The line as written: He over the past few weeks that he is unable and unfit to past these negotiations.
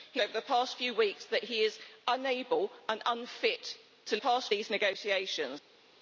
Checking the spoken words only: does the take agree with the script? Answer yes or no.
yes